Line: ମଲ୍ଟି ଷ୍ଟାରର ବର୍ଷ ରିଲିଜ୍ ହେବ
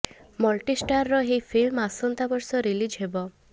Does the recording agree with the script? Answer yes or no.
no